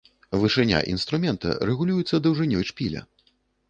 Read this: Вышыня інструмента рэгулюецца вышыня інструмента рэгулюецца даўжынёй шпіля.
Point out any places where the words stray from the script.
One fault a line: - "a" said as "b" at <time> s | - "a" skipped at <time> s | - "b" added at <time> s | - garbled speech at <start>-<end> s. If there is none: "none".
- "вышыня інструмента рэгулюецца" skipped at 2.2 s